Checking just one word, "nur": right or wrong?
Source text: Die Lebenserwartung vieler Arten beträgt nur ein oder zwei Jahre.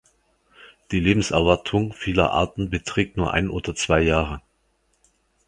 right